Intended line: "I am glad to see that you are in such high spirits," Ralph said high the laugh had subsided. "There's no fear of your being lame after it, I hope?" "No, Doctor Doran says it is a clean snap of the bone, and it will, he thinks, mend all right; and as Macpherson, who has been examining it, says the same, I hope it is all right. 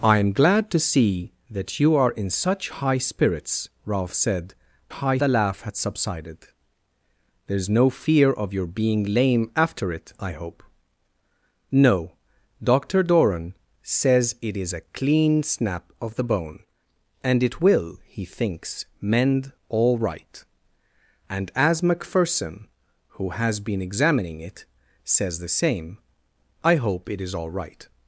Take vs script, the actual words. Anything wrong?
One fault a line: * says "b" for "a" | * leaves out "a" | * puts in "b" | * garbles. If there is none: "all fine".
all fine